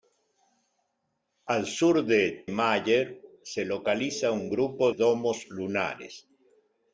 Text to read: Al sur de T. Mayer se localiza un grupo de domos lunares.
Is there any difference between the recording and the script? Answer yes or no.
yes